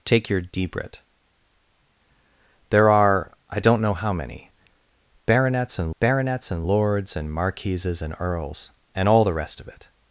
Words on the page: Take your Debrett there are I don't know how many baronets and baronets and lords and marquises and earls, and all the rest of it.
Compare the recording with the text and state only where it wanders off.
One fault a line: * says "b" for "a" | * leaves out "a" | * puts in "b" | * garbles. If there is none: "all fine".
all fine